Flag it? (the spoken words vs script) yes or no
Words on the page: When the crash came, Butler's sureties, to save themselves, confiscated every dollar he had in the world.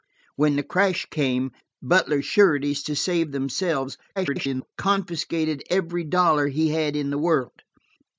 yes